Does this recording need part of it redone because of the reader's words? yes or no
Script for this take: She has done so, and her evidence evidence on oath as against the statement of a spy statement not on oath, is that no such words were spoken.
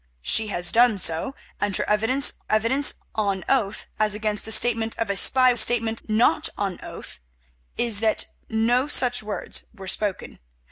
no